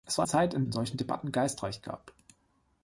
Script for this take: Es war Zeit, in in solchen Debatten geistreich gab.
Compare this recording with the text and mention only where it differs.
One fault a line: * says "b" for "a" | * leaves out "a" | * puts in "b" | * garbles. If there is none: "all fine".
all fine